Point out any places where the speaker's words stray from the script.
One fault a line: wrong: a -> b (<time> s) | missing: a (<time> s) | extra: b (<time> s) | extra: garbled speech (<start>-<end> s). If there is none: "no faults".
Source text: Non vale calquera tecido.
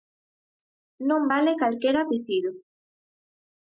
no faults